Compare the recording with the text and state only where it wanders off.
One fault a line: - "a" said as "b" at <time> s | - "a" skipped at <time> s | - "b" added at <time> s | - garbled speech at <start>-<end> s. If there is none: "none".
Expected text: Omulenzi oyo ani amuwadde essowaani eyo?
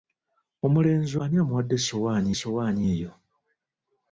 - "oyo" skipped at 1.1 s
- "essowaani" added at 2.3 s